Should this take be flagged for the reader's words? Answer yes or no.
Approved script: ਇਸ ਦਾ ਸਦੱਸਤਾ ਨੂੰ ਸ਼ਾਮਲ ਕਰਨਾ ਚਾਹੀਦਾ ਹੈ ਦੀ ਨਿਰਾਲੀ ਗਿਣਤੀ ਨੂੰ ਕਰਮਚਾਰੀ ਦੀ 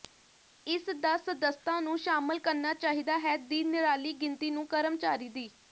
no